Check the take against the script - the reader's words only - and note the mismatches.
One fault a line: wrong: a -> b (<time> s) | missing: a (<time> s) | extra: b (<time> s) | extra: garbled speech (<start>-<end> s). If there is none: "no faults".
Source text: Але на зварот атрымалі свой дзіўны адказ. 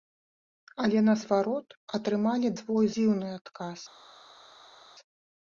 no faults